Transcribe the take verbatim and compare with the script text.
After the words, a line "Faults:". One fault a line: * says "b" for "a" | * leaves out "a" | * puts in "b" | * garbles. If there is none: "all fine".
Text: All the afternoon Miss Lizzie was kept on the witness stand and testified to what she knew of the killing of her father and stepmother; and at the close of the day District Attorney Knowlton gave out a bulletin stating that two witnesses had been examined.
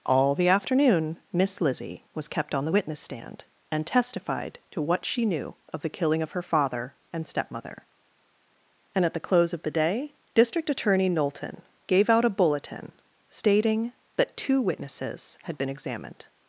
All the afternoon Miss Lizzie was kept on the witness stand and testified to what she knew of the killing of her father and stepmother; and at the close of the day District Attorney Knowlton gave out a bulletin stating that two witnesses had been examined.
Faults:
all fine